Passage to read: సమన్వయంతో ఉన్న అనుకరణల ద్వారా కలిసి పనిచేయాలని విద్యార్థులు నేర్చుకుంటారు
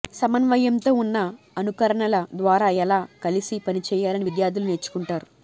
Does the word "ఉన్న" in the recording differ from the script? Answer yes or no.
no